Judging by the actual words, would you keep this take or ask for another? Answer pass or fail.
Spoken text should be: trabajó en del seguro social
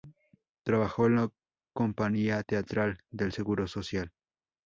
fail